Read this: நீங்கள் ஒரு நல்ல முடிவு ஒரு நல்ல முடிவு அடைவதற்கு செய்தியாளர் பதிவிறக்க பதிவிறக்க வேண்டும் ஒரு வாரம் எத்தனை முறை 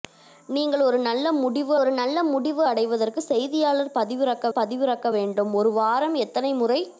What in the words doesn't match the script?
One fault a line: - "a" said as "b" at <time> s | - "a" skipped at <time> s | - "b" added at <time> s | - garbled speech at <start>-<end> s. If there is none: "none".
none